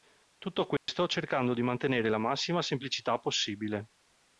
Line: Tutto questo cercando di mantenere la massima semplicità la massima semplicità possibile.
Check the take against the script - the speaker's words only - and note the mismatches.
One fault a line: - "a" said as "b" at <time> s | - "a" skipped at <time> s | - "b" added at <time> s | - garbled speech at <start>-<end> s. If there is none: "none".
- "la massima semplicità" skipped at 3.2 s